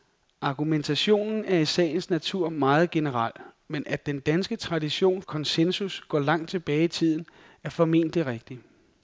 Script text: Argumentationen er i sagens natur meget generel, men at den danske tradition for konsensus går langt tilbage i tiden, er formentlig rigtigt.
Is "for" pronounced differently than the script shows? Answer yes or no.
yes